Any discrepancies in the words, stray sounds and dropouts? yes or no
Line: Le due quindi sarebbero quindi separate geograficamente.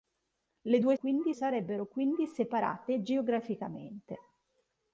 no